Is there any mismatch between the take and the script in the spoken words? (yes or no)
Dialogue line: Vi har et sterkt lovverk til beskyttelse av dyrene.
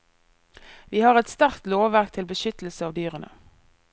no